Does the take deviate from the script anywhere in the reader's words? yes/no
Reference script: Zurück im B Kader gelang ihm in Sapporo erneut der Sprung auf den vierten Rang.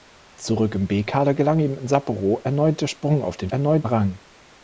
yes